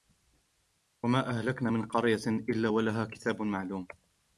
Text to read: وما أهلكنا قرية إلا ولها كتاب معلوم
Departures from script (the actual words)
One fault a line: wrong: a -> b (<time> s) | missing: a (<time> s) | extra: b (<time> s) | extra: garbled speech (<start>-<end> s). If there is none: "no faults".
extra: من (1.7 s)